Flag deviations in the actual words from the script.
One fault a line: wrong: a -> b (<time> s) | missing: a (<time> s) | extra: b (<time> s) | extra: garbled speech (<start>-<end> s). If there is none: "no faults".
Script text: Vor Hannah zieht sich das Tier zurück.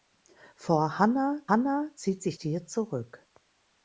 extra: Hannah (1.5 s)
missing: das (2.4 s)